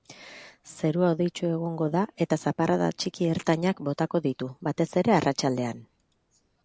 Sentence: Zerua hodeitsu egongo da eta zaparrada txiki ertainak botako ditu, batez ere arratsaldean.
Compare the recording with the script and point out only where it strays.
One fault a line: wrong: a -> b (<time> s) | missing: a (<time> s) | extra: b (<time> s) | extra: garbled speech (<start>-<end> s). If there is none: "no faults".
no faults